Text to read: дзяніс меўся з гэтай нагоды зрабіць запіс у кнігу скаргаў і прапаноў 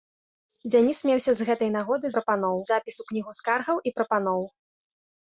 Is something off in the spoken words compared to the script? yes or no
yes